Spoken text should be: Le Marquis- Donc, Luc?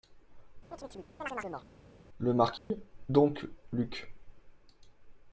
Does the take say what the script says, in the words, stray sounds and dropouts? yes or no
no